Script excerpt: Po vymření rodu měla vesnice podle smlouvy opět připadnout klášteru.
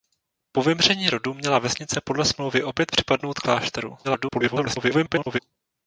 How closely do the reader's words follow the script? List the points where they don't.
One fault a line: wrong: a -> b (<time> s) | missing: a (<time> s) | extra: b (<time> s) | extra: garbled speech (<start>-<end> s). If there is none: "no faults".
extra: garbled speech (4.0-5.4 s)